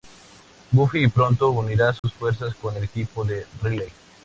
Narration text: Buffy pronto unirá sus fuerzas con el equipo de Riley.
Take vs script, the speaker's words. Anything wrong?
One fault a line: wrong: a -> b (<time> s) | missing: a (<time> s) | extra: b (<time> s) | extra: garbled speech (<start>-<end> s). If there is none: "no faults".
no faults